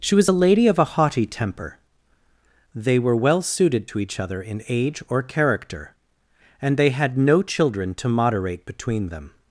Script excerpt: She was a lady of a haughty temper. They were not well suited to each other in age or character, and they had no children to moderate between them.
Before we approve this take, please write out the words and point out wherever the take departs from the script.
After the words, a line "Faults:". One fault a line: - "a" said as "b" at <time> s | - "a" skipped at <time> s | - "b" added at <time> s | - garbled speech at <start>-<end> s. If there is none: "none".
She was a lady of a haughty temper. They were well suited to each other in age or character, and they had no children to moderate between them.
Faults:
- "not" skipped at 3.2 s